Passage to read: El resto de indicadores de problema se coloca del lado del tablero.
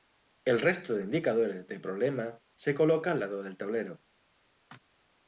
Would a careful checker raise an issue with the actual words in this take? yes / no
yes